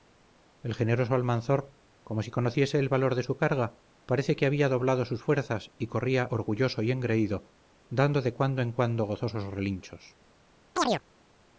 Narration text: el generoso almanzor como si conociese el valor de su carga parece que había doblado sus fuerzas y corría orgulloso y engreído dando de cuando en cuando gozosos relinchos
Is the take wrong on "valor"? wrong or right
right